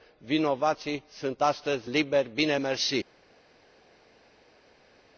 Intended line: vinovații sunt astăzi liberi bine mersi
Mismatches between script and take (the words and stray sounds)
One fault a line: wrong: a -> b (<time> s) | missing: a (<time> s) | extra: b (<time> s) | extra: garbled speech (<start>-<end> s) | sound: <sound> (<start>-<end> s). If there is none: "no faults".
no faults